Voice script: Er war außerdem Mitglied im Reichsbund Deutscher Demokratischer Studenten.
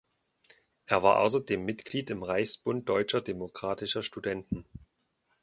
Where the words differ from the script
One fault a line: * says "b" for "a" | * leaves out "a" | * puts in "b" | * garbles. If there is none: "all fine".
all fine